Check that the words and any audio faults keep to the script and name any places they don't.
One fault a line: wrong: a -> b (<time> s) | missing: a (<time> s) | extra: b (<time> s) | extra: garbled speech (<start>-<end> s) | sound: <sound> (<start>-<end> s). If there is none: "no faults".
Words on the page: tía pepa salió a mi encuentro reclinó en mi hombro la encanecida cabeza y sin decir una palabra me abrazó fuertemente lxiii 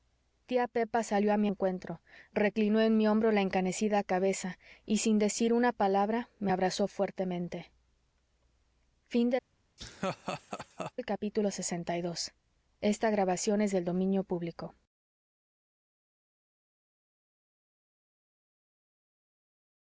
sound: laugh (9.8-10.9 s)